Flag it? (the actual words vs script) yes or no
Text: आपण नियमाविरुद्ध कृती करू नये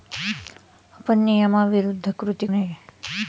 yes